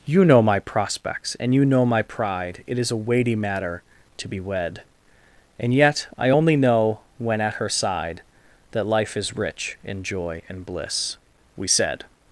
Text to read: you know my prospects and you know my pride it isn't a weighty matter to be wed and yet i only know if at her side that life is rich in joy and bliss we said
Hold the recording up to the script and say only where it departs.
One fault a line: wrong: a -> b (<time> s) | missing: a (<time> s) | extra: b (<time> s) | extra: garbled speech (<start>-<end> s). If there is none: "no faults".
wrong: isn't -> is (2.8 s)
wrong: if -> when (7.2 s)